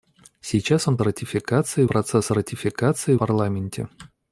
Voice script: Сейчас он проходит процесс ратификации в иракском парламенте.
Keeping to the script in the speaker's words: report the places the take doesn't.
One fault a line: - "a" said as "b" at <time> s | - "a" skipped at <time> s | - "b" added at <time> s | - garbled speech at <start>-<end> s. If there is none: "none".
- "проходит" said as "ратификации" at 1.0 s
- "в иракском" skipped at 3.1 s